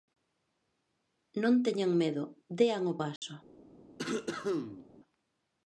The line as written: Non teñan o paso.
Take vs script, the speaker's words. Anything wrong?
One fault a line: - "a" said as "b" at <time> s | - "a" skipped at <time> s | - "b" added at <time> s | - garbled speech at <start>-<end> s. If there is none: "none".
- "medo dean" added at 2.0 s